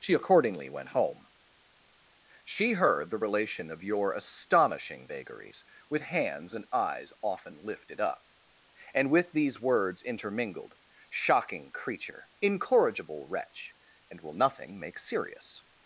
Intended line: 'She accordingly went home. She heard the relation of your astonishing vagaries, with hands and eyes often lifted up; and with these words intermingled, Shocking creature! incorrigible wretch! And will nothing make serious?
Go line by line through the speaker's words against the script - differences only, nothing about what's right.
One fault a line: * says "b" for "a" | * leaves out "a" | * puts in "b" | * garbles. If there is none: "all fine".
all fine